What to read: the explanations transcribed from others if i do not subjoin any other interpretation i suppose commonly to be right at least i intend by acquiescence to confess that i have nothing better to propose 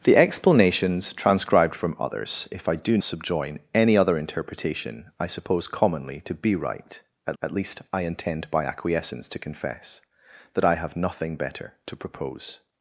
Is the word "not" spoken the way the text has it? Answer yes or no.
no